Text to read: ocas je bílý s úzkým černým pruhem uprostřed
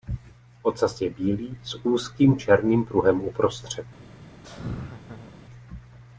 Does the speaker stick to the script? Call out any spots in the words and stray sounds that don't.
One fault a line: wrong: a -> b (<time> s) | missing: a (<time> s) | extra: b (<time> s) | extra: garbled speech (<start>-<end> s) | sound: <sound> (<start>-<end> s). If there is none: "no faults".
sound: laugh (4.4-5.4 s)